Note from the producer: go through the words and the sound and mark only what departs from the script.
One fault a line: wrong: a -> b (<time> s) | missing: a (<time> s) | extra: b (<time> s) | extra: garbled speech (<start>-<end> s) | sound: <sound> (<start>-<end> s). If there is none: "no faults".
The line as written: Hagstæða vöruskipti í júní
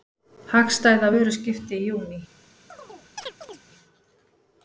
sound: chirp (2.7-3.6 s)